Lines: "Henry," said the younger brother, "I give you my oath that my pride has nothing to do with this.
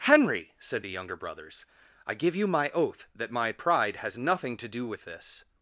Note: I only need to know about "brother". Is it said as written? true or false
false